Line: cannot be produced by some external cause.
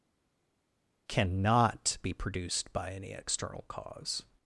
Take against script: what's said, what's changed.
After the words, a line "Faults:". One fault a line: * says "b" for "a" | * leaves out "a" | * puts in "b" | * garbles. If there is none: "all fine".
cannot be produced by any external cause.
Faults:
* says "any" for "some"